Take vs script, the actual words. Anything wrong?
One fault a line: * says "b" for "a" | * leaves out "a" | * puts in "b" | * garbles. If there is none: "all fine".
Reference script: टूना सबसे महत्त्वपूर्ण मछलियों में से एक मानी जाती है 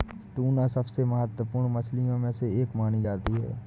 all fine